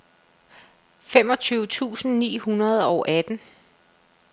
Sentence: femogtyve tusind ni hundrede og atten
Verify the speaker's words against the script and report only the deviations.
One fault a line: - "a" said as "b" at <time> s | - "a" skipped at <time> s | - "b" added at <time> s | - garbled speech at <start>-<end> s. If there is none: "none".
none